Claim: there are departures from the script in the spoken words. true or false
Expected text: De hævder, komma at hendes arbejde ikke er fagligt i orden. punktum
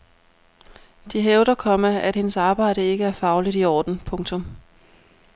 false